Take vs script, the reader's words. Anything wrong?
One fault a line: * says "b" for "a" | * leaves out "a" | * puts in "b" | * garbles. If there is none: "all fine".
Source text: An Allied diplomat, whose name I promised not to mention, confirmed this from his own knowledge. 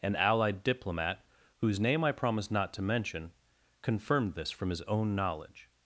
all fine